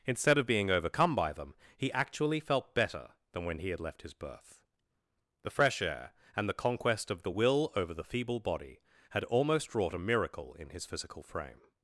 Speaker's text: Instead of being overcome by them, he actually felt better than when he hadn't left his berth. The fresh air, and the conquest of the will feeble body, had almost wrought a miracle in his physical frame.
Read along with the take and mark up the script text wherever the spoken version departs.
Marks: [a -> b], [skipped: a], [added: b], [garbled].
Instead of being overcome by them, he actually felt better than when he [hadn't -> had] left his berth. The fresh air, and the conquest of the will [added: over the] feeble body, had almost wrought a miracle in his physical frame.